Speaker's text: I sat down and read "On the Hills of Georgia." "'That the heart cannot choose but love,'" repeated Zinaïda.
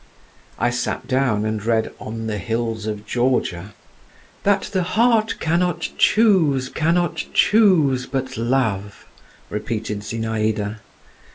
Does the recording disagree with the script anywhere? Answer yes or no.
yes